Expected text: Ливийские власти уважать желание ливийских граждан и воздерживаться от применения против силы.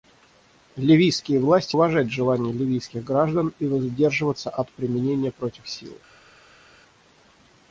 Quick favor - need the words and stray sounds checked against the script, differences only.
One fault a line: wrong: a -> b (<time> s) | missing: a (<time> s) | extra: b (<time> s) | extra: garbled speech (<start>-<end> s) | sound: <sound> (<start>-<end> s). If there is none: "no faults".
no faults